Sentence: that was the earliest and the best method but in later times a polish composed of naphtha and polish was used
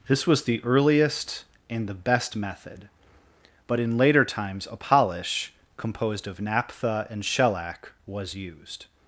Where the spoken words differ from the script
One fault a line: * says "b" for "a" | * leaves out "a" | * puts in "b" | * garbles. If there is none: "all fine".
* says "this" for "that"
* says "shellac" for "polish"